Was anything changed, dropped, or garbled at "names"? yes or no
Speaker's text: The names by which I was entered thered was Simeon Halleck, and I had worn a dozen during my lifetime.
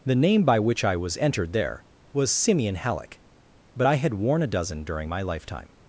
yes